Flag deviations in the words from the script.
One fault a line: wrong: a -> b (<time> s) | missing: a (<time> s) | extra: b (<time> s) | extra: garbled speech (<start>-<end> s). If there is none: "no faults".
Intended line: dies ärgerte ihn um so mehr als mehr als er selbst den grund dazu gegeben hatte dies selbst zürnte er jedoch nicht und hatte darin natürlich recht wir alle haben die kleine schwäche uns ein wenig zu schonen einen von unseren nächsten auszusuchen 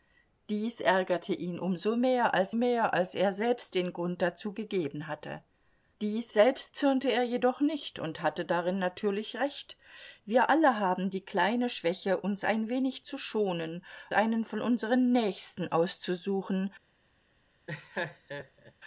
no faults